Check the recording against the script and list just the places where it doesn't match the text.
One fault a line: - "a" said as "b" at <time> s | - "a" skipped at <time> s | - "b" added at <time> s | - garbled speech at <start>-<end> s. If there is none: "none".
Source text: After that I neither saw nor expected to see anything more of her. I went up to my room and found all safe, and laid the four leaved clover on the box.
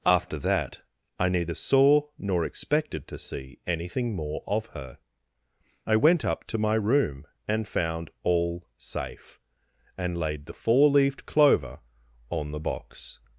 none